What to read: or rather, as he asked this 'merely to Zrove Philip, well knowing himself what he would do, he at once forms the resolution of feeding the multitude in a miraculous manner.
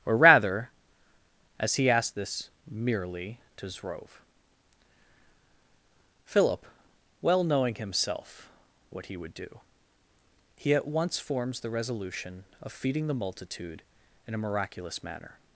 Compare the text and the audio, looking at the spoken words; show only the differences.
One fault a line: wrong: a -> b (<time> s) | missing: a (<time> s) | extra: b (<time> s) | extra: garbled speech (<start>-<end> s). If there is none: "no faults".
no faults